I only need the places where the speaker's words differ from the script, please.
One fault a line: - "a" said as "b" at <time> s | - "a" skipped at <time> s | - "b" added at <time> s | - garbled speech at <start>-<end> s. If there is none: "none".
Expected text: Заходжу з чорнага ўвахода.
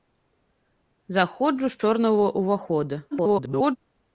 - garbled speech at 3.1-3.8 s